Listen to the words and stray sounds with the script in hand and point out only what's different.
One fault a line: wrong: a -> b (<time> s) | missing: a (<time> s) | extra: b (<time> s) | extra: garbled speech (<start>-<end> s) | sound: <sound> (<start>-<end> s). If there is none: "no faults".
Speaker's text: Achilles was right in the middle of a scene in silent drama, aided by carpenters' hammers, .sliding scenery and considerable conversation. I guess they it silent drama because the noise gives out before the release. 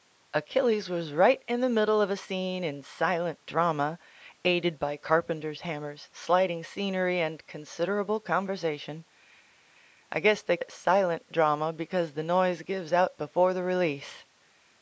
no faults